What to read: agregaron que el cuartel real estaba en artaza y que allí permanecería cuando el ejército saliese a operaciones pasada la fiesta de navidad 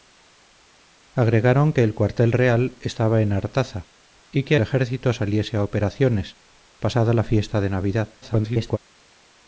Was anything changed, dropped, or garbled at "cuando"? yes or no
yes